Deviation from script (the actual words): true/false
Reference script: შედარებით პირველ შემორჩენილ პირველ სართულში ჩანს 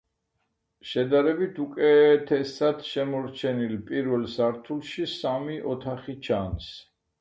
true